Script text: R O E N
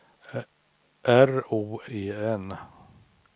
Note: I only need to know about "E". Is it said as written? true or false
true